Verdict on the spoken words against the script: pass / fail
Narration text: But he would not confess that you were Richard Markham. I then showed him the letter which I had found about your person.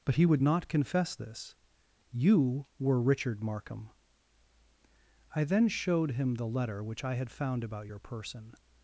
fail